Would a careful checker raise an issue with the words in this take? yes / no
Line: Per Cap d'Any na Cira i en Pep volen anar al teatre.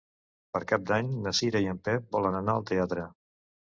no